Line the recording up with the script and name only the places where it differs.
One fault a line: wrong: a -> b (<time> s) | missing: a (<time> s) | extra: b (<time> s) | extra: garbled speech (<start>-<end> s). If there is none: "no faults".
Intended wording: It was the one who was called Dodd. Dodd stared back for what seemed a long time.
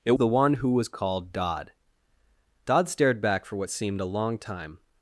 missing: was (0.2 s)